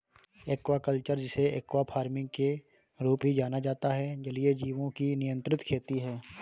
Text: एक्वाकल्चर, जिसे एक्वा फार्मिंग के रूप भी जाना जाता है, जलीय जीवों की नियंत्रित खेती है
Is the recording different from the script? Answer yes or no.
no